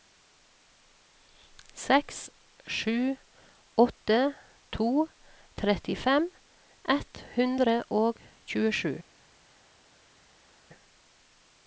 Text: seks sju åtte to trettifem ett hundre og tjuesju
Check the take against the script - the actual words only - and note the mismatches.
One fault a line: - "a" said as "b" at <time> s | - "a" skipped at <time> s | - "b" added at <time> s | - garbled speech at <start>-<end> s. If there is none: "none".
none